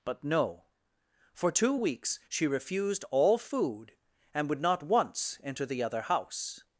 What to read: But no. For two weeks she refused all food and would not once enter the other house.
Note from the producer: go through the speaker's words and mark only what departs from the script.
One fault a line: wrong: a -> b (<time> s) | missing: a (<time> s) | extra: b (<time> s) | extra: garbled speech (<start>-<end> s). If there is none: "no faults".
no faults